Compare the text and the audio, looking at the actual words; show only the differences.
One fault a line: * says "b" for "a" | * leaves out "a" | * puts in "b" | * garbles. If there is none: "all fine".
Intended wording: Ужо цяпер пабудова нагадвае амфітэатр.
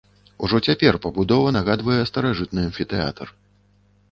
* puts in "старажытны"